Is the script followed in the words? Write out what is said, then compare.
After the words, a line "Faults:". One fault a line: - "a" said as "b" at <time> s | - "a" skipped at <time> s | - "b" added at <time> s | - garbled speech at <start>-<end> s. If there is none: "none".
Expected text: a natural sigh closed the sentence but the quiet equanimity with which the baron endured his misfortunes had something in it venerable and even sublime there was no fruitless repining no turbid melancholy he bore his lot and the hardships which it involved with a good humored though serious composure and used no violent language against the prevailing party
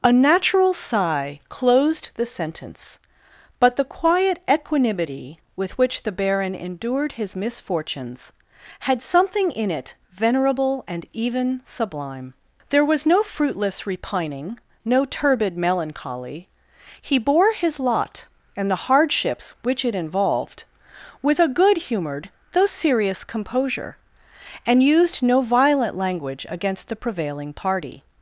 a natural sigh closed the sentence but the quiet equanimity with which the baron endured his misfortunes had something in it venerable and even sublime there was no fruitless repining no turbid melancholy he bore his lot and the hardships which it involved with a good humored though serious composure and used no violent language against the prevailing party
Faults:
none